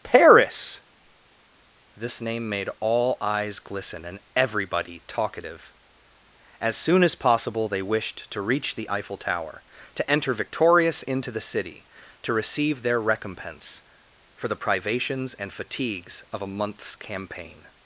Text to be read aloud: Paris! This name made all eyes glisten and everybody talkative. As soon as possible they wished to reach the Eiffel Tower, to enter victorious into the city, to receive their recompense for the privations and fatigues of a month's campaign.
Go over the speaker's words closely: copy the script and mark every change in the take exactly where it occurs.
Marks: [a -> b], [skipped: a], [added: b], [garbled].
Paris! This name made all eyes glisten and everybody talkative. As soon as possible they wished to reach the Eiffel Tower, to enter victorious into the city, to receive their recompense for the privations and fatigues of a month's campaign.